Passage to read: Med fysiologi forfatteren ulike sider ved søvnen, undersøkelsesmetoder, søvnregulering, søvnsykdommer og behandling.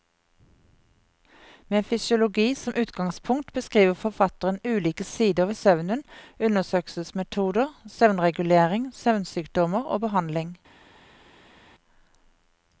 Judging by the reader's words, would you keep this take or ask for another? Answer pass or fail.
fail